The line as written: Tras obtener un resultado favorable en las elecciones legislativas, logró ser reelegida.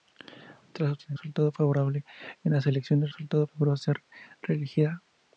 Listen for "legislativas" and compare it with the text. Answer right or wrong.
wrong